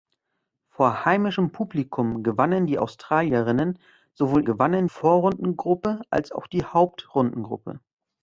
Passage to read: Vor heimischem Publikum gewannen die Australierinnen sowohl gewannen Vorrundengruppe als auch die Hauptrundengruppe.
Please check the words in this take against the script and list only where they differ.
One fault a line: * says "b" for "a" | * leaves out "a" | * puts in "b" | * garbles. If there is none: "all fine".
all fine